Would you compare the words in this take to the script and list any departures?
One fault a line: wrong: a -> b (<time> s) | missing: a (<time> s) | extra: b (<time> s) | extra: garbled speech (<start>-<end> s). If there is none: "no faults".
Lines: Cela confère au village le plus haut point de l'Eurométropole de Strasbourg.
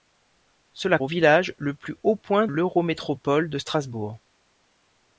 missing: confère (1.0 s)
missing: de (2.5 s)